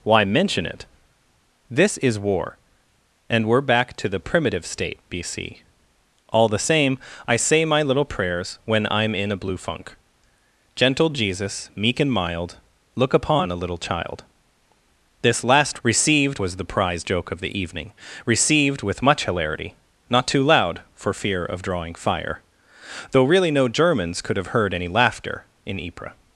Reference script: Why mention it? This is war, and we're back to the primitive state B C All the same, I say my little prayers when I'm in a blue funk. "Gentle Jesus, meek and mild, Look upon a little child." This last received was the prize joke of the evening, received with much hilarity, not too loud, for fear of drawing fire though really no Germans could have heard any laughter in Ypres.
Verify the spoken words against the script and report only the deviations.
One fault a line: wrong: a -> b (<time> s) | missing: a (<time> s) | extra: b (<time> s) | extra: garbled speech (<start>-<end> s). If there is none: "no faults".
no faults